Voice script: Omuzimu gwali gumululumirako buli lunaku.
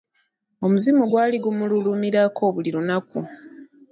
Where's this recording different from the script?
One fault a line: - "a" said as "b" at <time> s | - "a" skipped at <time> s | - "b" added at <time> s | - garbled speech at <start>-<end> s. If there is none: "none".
none